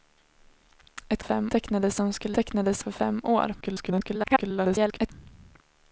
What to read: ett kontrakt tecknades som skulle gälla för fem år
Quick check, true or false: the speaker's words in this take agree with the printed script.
false